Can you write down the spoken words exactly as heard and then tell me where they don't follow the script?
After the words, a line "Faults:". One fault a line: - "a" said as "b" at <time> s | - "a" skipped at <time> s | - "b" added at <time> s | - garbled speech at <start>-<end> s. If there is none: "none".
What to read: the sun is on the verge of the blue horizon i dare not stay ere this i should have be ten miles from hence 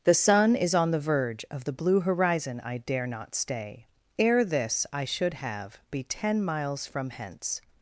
the sun is on the verge of the blue horizon i dare not stay ere this i should have be ten miles from hence
Faults:
none